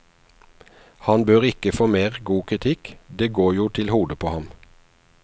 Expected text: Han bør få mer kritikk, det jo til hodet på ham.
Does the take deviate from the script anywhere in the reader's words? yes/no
yes